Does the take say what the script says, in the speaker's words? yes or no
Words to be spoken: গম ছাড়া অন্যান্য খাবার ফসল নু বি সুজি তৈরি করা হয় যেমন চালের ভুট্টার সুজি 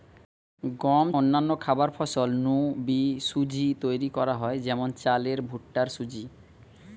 no